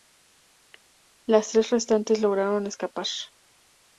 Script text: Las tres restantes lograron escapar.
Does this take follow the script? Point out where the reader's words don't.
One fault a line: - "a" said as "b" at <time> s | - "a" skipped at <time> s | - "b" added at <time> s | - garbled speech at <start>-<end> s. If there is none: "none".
none